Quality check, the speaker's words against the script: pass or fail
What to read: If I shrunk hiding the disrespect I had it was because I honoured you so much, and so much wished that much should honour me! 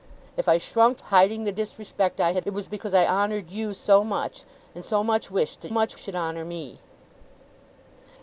pass